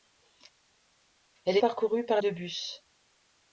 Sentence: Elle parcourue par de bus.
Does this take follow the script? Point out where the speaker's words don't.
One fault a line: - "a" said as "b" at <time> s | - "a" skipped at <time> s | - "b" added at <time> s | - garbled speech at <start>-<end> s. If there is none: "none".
none